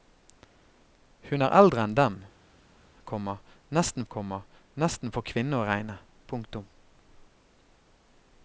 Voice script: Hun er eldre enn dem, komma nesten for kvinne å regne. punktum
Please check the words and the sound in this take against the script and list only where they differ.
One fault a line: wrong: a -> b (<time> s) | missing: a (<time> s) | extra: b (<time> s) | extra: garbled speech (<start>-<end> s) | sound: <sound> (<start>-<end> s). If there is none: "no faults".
extra: komma nesten (4.1 s)